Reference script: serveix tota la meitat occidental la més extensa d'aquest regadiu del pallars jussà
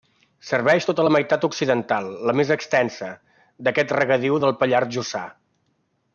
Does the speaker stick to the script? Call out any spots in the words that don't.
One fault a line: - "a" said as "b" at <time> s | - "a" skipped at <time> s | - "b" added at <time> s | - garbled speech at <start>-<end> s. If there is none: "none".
none